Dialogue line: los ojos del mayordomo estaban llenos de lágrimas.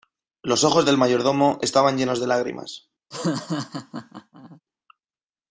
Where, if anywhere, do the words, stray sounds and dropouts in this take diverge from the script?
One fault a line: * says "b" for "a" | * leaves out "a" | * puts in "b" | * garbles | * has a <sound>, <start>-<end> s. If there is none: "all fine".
* has a laugh, 3.1-4.6 s